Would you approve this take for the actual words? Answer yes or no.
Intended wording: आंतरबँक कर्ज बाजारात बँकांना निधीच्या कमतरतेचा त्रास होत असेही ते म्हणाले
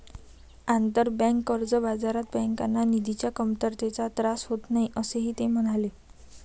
no